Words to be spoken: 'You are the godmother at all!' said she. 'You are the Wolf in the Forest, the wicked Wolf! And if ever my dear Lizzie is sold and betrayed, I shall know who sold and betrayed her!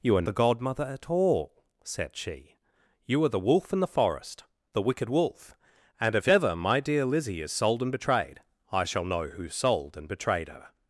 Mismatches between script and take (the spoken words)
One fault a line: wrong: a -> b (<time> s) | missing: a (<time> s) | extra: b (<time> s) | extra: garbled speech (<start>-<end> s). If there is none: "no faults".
no faults